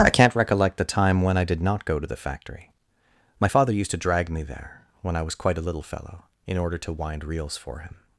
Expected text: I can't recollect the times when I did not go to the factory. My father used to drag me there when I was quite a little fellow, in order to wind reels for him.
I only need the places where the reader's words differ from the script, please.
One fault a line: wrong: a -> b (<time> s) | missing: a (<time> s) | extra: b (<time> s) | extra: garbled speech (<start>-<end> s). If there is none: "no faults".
wrong: times -> time (0.8 s)